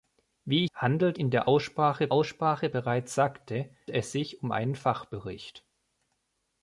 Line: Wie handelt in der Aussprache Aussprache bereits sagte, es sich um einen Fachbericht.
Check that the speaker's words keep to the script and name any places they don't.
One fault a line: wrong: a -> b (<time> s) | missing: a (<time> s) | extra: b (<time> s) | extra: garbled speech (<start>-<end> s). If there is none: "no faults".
no faults